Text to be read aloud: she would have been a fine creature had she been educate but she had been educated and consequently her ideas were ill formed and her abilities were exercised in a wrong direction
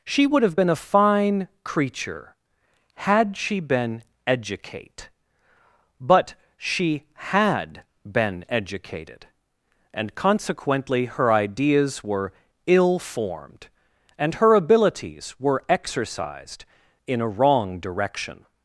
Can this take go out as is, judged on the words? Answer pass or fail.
pass